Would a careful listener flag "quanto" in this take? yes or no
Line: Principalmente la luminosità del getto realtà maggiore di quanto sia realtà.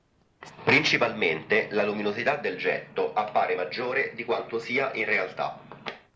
no